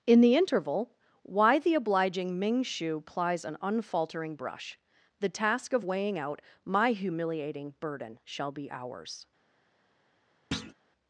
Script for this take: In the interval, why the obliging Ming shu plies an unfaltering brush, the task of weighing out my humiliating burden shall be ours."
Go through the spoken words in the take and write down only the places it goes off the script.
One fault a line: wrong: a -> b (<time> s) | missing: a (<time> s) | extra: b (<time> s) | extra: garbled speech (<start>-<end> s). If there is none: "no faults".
no faults